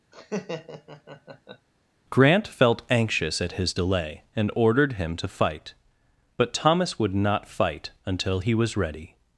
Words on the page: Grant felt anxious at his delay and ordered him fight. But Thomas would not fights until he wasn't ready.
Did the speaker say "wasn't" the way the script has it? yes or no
no